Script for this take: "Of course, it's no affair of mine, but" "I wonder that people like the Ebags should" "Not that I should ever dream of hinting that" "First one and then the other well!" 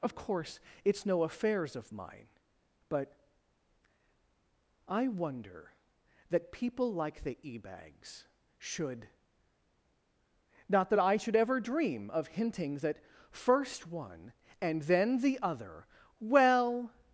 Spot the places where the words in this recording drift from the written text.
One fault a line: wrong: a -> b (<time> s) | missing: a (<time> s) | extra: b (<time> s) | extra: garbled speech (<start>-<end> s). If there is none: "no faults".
wrong: affair -> affairs (1.2 s)